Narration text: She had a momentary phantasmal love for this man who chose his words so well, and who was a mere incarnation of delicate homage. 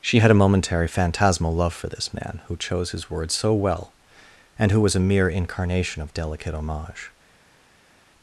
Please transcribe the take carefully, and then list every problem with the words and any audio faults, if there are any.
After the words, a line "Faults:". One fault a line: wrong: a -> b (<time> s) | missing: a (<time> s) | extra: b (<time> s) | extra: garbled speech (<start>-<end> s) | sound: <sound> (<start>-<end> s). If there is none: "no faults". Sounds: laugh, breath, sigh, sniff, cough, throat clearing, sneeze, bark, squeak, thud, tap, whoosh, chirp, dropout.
She had a momentary phantasmal love for this man who chose his words so well, and who was a mere incarnation of delicate homage.
Faults:
no faults